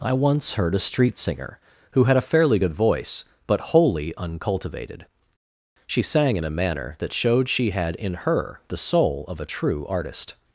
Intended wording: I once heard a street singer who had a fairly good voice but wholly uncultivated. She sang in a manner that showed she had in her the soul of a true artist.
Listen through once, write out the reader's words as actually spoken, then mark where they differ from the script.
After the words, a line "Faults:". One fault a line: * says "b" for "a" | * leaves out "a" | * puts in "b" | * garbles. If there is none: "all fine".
I once heard a street singer who had a fairly good voice but wholly uncultivated. She sang in a manner that showed she had in her the soul of a true artist.
Faults:
all fine